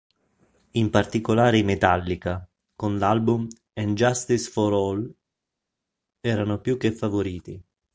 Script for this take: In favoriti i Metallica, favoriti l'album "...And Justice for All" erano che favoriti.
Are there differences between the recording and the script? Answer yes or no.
yes